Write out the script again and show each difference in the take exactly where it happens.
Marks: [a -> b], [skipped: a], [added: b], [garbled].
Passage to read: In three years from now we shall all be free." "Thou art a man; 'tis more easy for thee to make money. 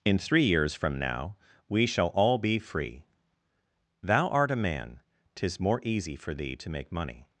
In three years from now we shall all be free." "Thou art a man; 'tis more easy for thee to make money.